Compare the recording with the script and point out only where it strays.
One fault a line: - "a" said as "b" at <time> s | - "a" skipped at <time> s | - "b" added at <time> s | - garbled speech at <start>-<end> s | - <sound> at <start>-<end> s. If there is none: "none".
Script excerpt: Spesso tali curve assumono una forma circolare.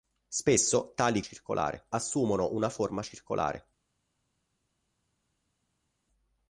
- "curve" said as "circolare" at 1.2 s